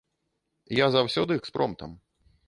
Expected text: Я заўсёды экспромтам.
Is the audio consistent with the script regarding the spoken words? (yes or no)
yes